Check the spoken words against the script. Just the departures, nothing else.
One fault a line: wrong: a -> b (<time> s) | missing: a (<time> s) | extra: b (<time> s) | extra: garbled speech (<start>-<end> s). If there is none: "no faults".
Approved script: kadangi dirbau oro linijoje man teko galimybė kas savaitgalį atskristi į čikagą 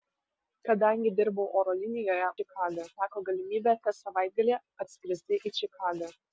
wrong: man -> čikagą (2.4 s)